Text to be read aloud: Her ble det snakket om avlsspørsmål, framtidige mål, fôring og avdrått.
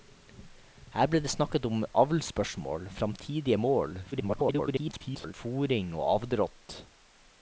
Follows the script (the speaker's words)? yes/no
no